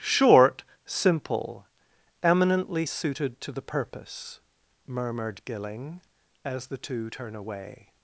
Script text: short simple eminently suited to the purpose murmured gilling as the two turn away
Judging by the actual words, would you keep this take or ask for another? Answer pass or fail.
pass